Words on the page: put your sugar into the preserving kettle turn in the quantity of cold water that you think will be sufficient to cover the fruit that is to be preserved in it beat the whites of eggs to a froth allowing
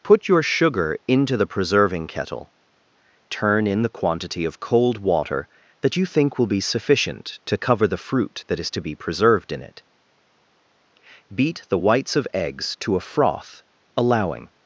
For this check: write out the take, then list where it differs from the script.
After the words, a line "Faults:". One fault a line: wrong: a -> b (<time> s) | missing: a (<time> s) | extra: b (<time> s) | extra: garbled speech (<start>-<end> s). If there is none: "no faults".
put your sugar into the preserving kettle turn in the quantity of cold water that you think will be sufficient to cover the fruit that is to be preserved in it beat the whites of eggs to a froth allowing
Faults:
no faults